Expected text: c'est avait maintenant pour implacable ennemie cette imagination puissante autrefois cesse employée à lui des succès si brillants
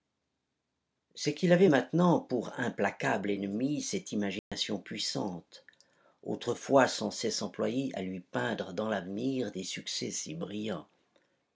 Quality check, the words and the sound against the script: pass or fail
fail